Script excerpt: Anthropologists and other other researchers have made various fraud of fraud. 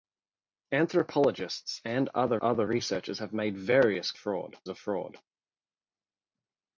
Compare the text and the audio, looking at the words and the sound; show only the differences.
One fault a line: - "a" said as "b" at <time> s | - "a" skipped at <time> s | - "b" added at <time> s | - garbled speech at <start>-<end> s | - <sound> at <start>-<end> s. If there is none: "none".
none